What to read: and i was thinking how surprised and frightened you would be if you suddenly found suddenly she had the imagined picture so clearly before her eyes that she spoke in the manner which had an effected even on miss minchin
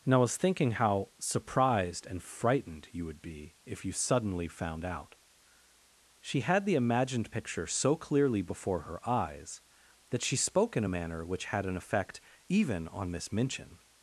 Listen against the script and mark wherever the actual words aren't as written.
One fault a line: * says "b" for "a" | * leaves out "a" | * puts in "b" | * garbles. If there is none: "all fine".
* says "out" for "suddenly"
* says "a" for "the"
* says "effect" for "effected"